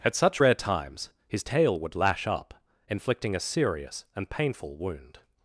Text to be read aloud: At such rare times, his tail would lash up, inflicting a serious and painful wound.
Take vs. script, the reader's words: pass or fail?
pass